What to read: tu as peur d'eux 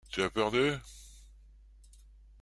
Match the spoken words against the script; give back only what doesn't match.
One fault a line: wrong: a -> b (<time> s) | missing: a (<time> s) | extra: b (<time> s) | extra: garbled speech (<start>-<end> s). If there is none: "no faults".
no faults